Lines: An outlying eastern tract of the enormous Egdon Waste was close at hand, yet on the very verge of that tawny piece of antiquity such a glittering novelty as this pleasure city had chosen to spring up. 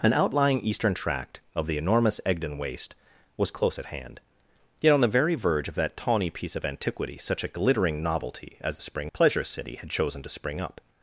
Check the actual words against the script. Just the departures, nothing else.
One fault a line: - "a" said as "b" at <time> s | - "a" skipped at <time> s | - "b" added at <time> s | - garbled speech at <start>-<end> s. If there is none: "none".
- "this" said as "spring" at 8.8 s